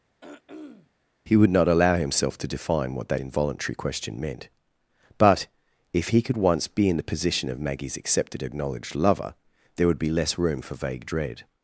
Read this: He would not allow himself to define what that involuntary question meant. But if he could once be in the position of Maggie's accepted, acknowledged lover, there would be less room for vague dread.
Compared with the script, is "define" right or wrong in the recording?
right